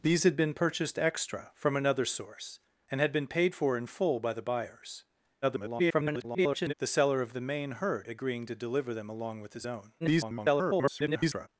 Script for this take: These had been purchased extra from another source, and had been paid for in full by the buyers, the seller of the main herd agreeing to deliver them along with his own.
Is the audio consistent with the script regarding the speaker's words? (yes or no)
no